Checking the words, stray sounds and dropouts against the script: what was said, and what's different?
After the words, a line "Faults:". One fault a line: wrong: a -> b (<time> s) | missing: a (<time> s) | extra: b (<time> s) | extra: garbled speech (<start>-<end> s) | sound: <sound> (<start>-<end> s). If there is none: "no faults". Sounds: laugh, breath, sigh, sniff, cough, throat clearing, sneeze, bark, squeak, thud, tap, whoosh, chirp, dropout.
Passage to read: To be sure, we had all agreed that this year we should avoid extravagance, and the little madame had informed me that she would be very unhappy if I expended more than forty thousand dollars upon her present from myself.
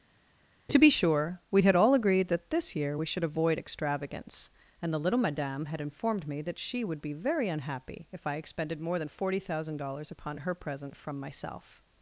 To be sure, we had all agreed that this year we should avoid extravagance, and the little madame had informed me that she would be very unhappy if I expended more than forty thousand dollars upon her present from myself.
Faults:
no faults